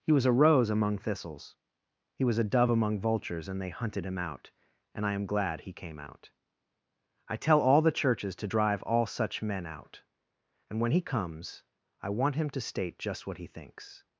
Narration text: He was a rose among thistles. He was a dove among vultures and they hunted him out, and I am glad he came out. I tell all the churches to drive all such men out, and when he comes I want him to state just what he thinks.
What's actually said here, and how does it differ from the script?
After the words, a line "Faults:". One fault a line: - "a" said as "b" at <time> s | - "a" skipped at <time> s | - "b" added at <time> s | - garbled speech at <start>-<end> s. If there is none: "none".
He was a rose among thistles. He was a dove among vultures and they hunted him out, and I am glad he came out. I tell all the churches to drive all such men out, and when he comes I want him to state just what he thinks.
Faults:
none